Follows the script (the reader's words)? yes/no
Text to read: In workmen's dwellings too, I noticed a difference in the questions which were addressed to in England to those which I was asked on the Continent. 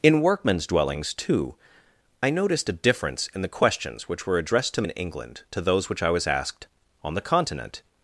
yes